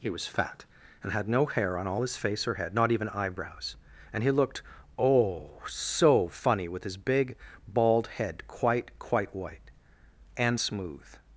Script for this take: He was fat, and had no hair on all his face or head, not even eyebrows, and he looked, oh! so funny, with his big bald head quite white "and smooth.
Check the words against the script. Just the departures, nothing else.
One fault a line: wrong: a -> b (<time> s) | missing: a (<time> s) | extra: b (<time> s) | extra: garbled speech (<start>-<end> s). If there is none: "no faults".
extra: quite (9.0 s)